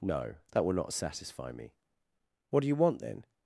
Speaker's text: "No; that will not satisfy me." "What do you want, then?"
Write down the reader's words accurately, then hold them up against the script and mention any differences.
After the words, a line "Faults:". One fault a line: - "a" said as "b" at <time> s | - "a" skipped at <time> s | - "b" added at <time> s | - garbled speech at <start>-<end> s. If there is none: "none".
"No; that will not satisfy me." "What do you want, then?"
Faults:
none